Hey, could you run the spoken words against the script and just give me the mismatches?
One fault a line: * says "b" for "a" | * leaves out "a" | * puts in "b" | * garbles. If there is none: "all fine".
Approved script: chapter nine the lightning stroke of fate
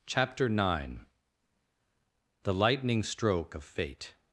all fine